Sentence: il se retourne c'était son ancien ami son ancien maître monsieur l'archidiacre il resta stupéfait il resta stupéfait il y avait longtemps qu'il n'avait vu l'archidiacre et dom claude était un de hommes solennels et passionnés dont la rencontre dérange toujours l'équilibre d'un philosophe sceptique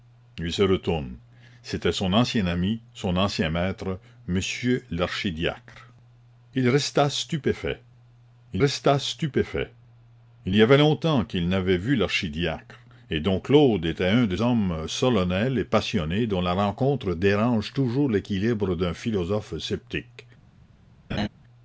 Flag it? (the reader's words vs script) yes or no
no